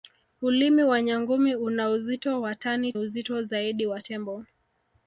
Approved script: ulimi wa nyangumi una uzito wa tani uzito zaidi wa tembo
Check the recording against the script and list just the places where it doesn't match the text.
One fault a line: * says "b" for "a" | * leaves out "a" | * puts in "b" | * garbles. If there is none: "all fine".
all fine